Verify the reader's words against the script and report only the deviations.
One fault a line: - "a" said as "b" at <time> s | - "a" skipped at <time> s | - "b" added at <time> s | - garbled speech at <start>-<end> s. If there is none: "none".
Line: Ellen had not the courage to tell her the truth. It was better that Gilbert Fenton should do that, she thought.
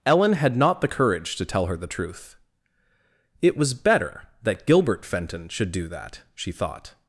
none